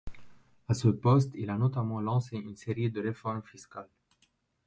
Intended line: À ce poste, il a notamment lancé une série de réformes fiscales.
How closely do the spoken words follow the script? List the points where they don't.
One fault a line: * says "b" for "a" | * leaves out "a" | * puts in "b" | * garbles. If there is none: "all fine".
all fine